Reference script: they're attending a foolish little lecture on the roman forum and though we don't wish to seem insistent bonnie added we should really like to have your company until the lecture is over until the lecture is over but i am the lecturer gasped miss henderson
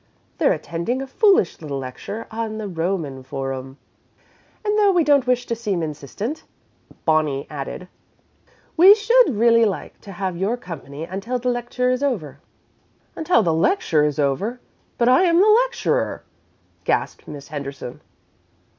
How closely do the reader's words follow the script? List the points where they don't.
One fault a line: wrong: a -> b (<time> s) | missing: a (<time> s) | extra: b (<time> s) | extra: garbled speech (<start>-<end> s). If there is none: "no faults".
no faults